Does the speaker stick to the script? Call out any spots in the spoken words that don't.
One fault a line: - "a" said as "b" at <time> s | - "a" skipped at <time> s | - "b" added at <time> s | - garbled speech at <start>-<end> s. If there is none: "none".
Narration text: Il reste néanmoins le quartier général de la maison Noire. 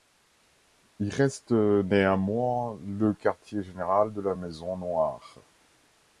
none